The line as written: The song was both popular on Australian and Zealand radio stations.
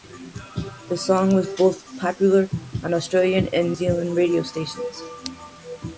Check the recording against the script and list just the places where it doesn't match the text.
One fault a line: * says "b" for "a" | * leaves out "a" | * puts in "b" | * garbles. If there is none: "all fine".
all fine